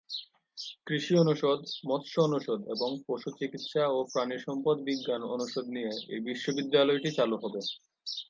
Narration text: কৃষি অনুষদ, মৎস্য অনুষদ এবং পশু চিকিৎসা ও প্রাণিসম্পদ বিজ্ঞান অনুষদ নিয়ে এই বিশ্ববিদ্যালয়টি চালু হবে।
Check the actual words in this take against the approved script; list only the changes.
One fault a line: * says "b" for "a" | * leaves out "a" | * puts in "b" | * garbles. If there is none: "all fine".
all fine